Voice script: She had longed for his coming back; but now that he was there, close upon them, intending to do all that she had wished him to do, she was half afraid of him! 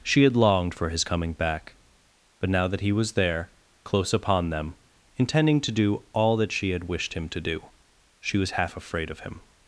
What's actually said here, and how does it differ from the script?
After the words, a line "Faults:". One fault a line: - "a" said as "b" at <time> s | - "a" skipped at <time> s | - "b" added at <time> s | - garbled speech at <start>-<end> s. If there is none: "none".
She had longed for his coming back; but now that he was there, close upon them, intending to do all that she had wished him to do, she was half afraid of him!
Faults:
none